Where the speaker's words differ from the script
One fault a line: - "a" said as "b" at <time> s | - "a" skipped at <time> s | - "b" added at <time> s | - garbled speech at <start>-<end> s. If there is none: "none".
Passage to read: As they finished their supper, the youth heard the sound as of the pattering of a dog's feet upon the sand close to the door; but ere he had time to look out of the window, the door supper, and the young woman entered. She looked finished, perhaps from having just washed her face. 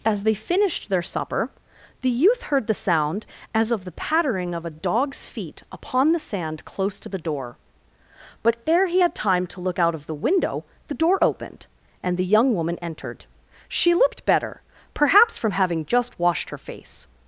- "supper" said as "opened" at 11.2 s
- "finished" said as "better" at 14.2 s